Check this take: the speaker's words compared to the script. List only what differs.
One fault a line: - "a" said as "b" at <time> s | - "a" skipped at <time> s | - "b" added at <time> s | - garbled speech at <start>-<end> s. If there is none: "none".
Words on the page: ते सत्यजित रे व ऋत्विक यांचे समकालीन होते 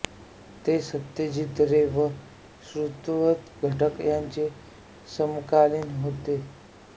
- "घटक" added at 3.6 s